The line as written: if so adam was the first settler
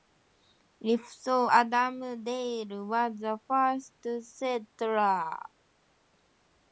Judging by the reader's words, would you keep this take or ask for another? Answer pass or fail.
fail